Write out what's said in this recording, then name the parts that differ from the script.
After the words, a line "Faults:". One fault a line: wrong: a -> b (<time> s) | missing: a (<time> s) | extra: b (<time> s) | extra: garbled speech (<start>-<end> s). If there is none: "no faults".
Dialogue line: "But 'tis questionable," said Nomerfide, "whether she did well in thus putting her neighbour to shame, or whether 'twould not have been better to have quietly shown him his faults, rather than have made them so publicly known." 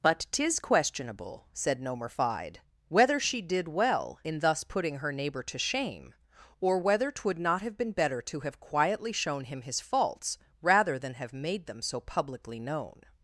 "But 'tis questionable," said Nomerfide, "whether she did well in thus putting her neighbour to shame, or whether 'twould not have been better to have quietly shown him his faults, rather than have made them so publicly known."
Faults:
no faults